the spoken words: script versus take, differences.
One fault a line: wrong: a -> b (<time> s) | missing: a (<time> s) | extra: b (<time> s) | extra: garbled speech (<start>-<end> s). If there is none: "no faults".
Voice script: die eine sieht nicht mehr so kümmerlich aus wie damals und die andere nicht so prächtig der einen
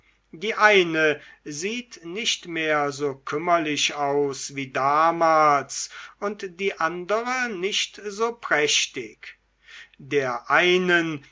no faults